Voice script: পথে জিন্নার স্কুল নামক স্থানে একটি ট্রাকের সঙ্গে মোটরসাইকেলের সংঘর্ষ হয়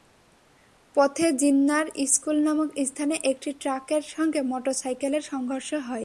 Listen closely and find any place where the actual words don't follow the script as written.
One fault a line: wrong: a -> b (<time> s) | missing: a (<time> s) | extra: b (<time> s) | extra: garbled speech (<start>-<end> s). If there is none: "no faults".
no faults